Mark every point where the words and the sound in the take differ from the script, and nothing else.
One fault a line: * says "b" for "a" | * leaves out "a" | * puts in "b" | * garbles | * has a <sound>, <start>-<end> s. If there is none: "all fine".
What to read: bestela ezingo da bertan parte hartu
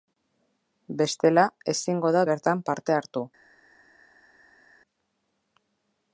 all fine